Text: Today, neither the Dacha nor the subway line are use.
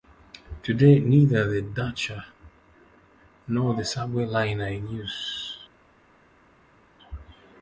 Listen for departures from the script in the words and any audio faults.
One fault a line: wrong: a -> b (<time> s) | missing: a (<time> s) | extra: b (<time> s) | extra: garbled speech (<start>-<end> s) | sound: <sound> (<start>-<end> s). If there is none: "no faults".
extra: in (4.7 s)